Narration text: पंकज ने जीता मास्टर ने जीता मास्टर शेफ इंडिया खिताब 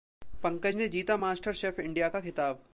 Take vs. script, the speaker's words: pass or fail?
fail